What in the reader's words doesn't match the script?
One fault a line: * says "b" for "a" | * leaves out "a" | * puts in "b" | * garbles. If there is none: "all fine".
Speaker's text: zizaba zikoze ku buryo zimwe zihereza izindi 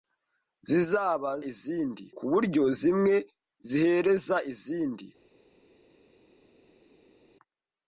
* says "izindi" for "zikoze"